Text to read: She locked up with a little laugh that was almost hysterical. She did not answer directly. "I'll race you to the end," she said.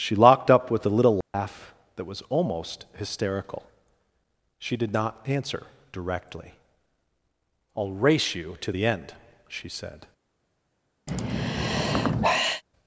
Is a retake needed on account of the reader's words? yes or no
no